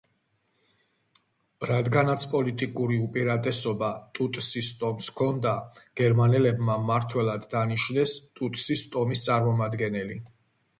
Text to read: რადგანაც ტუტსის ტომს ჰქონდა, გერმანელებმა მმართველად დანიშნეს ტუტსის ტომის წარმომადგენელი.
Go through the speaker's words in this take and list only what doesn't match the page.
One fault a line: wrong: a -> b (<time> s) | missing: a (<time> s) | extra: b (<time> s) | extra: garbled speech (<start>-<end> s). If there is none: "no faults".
extra: პოლიტიკური უპირატესობა (2.3 s)